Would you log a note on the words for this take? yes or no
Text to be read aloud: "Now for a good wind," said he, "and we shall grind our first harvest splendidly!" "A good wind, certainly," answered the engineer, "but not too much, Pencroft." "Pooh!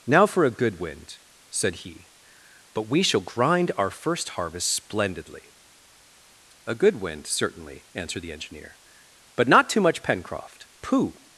yes